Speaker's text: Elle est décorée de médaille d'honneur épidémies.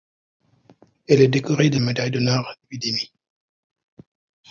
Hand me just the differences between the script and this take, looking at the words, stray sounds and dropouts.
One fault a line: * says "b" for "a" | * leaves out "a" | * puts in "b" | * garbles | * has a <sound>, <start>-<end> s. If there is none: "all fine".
all fine